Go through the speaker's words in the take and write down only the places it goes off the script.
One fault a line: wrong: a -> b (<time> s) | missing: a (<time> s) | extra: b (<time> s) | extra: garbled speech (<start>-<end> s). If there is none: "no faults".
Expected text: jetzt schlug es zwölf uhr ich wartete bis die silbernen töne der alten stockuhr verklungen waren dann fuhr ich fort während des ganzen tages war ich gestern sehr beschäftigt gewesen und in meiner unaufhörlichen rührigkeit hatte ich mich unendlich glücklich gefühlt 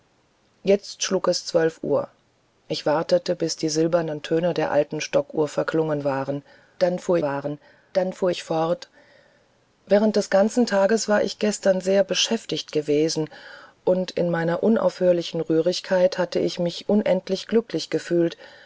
extra: waren dann fuhr (7.2 s)